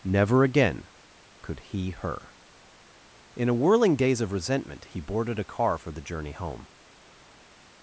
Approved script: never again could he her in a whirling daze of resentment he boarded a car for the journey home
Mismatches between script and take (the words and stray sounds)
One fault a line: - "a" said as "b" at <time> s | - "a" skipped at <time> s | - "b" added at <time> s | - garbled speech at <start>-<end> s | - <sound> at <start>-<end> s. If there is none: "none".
none